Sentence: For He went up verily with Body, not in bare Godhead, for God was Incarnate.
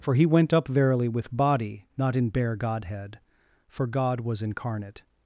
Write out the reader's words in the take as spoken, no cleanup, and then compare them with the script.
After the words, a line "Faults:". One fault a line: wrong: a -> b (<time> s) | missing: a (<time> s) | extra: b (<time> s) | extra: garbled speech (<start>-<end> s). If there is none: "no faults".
For He went up verily with Body, not in bare Godhead, for God was Incarnate.
Faults:
no faults